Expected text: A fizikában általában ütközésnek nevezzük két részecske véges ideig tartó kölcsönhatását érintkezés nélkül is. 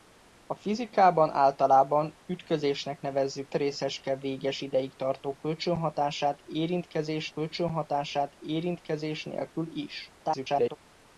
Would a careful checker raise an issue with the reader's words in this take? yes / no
yes